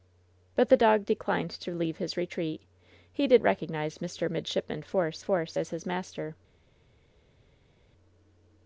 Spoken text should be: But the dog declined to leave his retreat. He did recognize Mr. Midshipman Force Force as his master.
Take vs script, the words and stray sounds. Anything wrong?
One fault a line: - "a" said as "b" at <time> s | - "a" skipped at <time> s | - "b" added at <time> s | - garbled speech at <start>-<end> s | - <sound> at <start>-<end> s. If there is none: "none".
none